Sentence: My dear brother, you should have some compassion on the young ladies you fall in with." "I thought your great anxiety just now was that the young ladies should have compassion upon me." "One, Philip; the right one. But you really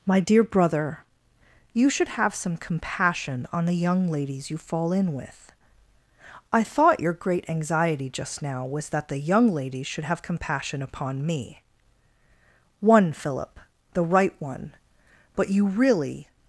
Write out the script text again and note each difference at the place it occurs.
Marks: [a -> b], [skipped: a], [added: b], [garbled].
My dear brother, you should have some compassion on the young ladies you fall in with." "I thought your great anxiety just now was that the young ladies should have compassion upon me." "One, Philip; the right one. But you really